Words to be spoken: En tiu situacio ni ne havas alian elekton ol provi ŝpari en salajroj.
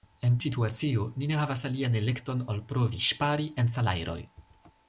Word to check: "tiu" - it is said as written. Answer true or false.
false